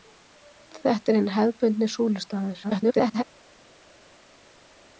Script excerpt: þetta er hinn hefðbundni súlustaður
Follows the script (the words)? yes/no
no